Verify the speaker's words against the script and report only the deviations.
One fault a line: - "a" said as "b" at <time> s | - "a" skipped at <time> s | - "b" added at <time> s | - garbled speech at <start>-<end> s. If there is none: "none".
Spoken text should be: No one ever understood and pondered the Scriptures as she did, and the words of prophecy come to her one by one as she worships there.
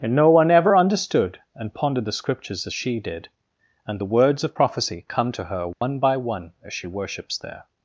- "and" added at 0.0 s